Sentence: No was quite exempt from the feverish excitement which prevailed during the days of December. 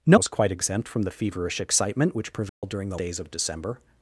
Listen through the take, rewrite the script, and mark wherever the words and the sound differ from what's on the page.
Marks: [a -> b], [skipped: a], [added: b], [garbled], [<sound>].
No was quite exempt from the feverish excitement which prevailed [dropout] during the days of December.